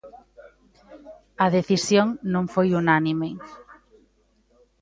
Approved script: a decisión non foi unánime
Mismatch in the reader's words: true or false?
false